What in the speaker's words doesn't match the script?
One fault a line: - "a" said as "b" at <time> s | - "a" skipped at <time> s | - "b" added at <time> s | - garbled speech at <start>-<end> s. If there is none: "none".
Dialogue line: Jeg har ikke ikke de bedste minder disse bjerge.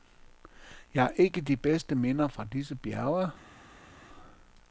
- "ikke" skipped at 1.4 s
- "fra" added at 2.3 s